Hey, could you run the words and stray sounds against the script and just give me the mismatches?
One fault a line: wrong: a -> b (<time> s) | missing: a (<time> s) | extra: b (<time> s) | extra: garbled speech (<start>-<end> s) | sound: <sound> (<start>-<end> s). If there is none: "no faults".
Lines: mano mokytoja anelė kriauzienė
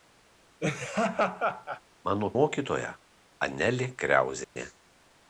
sound: laugh (0.6-1.8 s)
sound: dropout (4.4-4.6 s)